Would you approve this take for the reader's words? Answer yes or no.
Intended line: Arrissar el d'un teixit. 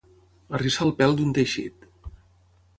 no